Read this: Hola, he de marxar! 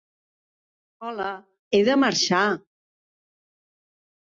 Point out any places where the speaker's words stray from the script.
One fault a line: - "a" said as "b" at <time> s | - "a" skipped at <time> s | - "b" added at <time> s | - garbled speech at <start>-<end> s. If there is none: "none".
none